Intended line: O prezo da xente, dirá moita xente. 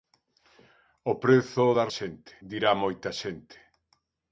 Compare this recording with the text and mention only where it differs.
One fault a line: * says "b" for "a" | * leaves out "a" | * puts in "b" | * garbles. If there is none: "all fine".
all fine